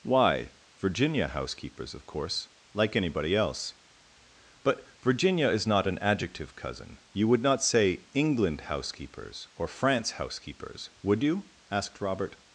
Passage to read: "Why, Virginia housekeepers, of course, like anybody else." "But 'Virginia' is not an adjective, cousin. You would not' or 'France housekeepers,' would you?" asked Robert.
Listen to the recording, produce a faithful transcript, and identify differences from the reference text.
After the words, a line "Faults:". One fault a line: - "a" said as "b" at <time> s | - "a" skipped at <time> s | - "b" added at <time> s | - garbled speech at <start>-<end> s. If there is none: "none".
"Why, Virginia housekeepers, of course, like anybody else." "But 'Virginia' is not an adjective, cousin. You would not say 'England housekeepers' or 'France housekeepers,' would you?" asked Robert.
Faults:
- "say England housekeepers" added at 7.6 s